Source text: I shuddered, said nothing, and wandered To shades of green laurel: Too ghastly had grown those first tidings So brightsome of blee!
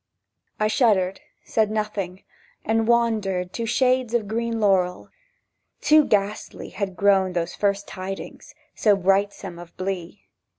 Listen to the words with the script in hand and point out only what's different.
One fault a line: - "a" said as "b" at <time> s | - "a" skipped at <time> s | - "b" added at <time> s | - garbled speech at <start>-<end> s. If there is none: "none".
none